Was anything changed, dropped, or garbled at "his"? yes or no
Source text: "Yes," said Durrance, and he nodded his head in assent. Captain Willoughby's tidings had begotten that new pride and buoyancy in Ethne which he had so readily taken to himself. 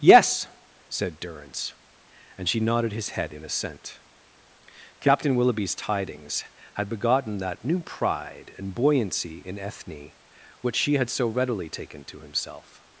no